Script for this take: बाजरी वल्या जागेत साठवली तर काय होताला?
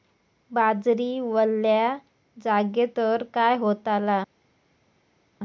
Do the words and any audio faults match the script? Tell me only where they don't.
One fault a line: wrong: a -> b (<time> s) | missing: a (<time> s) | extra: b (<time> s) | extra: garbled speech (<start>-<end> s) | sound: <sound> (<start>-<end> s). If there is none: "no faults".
missing: साठवली (3.0 s)